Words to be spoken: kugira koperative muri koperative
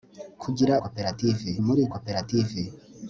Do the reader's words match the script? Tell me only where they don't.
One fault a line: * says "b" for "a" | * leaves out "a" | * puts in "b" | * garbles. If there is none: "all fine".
all fine